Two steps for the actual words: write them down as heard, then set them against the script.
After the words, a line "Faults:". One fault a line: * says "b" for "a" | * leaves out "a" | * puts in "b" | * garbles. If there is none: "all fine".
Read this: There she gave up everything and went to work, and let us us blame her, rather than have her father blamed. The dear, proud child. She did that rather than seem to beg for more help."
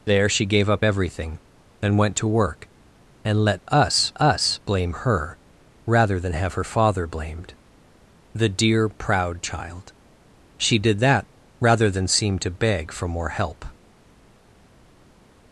There she gave up everything and went to work, and let us us blame her, rather than have her father blamed. The dear, proud child. She did that rather than seem to beg for more help."
Faults:
all fine